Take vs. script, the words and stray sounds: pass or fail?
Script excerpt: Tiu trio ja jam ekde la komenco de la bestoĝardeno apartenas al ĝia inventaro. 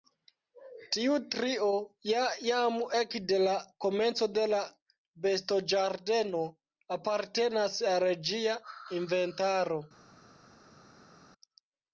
pass